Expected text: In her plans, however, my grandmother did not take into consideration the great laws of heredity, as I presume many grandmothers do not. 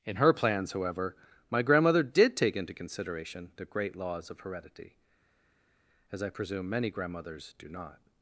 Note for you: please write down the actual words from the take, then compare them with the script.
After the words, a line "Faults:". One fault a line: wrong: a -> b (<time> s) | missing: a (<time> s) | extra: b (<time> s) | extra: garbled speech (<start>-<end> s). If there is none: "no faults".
In her plans, however, my grandmother did take into consideration the great laws of heredity, as I presume many grandmothers do not.
Faults:
missing: not (2.4 s)